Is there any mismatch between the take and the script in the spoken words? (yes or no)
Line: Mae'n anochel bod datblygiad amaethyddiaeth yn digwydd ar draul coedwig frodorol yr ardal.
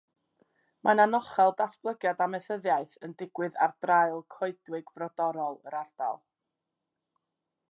yes